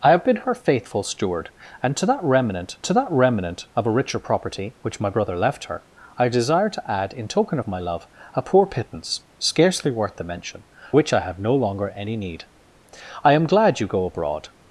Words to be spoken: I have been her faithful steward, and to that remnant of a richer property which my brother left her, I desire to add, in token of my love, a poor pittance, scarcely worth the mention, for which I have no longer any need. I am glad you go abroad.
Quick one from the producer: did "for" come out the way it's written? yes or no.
no